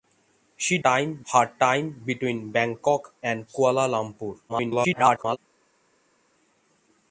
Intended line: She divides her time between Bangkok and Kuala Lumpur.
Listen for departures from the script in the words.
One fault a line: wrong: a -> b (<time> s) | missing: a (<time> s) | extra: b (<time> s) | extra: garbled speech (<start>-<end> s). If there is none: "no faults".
wrong: divides -> time (0.8 s)
extra: garbled speech (4.5-5.4 s)